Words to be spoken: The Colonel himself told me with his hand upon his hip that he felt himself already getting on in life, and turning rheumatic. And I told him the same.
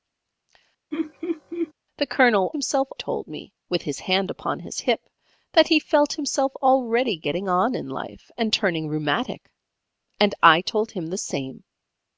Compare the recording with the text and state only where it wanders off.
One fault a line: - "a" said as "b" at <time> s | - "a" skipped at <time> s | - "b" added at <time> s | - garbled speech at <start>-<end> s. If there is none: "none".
none